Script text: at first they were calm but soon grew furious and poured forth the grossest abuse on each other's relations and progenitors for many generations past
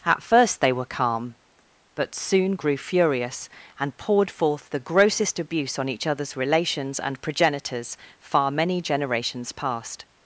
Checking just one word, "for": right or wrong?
wrong